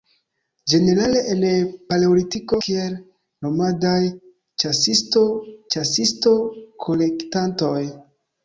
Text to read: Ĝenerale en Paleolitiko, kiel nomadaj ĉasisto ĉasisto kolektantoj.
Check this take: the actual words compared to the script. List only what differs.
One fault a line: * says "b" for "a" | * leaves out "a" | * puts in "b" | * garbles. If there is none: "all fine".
all fine